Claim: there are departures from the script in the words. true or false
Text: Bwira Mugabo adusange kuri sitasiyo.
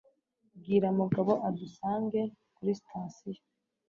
false